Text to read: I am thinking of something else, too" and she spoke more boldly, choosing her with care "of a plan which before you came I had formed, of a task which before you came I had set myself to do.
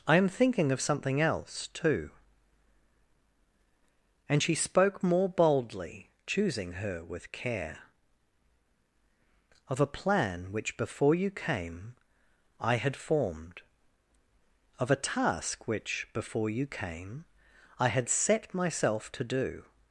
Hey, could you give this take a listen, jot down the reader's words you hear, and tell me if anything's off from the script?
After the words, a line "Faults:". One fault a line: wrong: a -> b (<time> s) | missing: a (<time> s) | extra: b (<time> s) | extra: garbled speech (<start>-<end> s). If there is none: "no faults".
I am thinking of something else, too" and she spoke more boldly, choosing her with care "of a plan which before you came I had formed, of a task which before you came I had set myself to do.
Faults:
no faults